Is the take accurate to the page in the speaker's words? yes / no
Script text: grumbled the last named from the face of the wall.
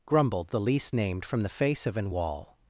no